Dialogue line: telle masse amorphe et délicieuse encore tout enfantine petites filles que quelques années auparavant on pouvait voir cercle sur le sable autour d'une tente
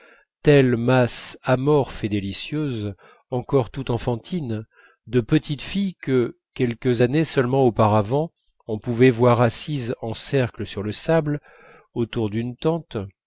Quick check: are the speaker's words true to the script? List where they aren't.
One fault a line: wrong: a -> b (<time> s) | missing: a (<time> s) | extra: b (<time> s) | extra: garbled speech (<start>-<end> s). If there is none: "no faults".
extra: de (5.1 s)
extra: seulement (7.2 s)
extra: assises en (9.4 s)